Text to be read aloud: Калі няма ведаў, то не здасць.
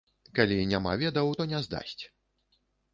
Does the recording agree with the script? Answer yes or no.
yes